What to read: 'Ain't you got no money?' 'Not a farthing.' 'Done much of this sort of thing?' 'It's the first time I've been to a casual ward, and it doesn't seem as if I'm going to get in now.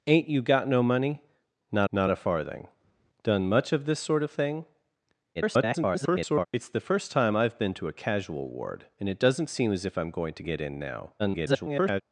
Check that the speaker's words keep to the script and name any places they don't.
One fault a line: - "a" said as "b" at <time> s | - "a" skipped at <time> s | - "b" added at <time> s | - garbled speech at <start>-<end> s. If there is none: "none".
- "not" added at 1.9 s
- garbled speech at 5.3-6.5 s
- garbled speech at 11.2-12.0 s